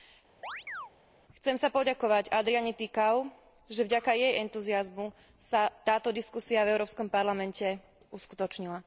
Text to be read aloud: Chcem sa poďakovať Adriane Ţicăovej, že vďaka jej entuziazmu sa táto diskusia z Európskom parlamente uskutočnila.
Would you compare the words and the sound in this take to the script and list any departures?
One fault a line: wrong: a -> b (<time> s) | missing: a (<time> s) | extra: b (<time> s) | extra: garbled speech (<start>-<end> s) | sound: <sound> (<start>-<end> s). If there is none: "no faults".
sound: chirp (0.4-0.9 s)
wrong: z -> v (6.6 s)